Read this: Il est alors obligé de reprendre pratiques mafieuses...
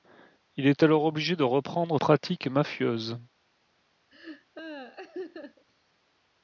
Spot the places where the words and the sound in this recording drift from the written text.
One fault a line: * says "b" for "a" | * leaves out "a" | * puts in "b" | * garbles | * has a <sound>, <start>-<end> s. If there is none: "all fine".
* has a laugh, 4.1-5.6 s